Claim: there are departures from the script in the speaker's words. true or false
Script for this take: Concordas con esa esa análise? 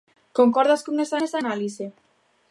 false